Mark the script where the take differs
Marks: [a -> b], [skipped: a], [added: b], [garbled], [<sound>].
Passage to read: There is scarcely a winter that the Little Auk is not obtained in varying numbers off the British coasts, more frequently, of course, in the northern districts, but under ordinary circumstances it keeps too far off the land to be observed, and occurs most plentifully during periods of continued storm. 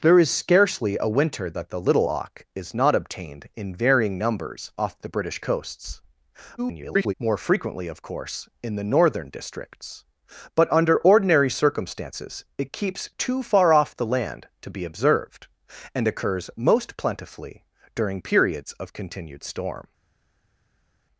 There is scarcely a winter that the Little Auk is not obtained in varying numbers off the British coasts, [garbled] more frequently, of course, in the northern districts, but under ordinary circumstances it keeps too far off the land to be observed, and occurs most plentifully during periods of continued storm.